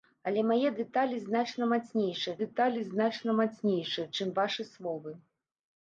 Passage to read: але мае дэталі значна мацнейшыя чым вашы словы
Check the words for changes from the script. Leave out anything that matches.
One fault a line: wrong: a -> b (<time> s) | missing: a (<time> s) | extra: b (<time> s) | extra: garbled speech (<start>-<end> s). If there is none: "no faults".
extra: дэталі значна мацнейшыя (2.4 s)